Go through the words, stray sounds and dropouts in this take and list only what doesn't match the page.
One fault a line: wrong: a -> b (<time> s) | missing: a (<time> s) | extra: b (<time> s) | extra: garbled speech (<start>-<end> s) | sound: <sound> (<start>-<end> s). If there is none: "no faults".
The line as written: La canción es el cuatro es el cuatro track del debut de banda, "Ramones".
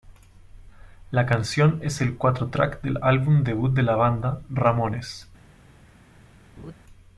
missing: es el cuatro (2.5 s)
extra: álbum (3.0 s)
extra: la (3.8 s)
sound: laugh (6.6-6.7 s)